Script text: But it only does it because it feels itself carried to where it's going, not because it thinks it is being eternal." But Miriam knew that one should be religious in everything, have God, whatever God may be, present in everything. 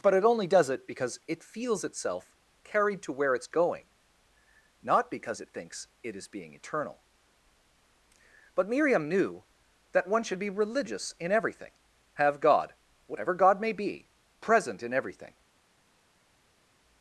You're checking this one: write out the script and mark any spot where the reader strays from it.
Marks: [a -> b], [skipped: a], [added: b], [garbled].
But it only does it because it feels itself carried to where it's going, not because it thinks it is being eternal." But Miriam knew that one should be religious in everything, have God, whatever God may be, present in everything.